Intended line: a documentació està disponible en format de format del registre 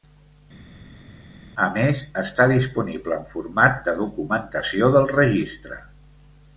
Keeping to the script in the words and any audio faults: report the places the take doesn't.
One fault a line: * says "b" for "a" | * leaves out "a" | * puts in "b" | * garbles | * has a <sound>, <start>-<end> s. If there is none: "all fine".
* says "més" for "documentació"
* says "documentació" for "format"